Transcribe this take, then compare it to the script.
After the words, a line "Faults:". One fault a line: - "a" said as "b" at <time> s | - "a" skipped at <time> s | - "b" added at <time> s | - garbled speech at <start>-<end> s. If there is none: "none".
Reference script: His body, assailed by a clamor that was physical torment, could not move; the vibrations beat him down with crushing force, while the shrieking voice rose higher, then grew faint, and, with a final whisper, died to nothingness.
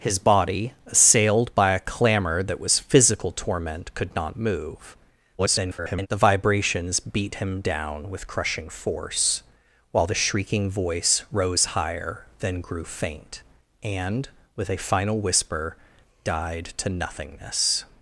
His body, assailed by a clamor that was physical torment, could not move; [garbled] the vibrations beat him down with crushing force, while the shrieking voice rose higher, then grew faint, and, with a final whisper, died to nothingness.
Faults:
- garbled speech at 5.4-6.1 s